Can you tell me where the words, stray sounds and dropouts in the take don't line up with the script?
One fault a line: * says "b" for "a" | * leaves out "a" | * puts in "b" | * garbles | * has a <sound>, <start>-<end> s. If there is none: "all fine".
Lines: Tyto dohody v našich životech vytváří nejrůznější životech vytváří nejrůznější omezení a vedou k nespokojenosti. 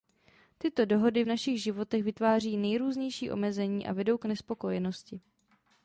* leaves out "životech vytváří nejrůznější"